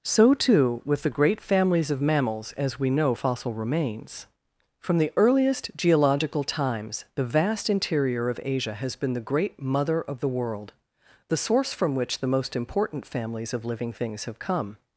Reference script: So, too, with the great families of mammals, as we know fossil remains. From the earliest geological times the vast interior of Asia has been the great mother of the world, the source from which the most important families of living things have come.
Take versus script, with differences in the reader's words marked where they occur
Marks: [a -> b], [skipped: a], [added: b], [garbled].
So, too, with the great families of mammals, as we know fossil remains. From the earliest geological times the vast interior of Asia has been the great mother of the world, the source from which the most important families of living things have come.